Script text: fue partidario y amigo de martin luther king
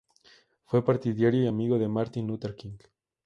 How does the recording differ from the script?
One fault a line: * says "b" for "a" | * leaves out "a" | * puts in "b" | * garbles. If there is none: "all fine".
all fine